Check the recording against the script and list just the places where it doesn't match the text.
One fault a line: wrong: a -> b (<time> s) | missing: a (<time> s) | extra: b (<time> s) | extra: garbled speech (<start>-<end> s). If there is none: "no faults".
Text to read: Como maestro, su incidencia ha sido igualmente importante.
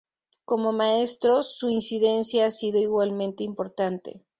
no faults